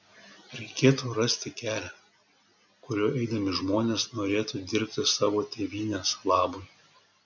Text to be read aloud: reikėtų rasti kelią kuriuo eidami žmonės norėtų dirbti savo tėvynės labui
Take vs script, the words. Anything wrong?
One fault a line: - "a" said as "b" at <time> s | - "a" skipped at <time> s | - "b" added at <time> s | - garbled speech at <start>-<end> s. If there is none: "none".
none